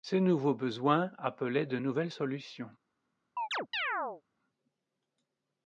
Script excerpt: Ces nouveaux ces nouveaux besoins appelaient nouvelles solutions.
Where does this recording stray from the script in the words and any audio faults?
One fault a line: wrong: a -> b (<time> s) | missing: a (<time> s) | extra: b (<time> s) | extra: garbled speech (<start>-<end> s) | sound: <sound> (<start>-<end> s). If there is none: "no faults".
missing: ces nouveaux (0.6 s)
extra: de (1.7 s)
sound: chirp (3.4-4.2 s)